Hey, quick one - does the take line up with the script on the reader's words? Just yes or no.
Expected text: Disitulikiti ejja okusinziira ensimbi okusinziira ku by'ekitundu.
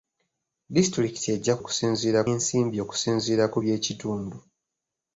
yes